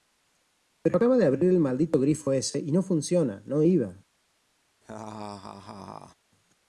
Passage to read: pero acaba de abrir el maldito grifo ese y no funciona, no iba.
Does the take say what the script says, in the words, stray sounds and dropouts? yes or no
no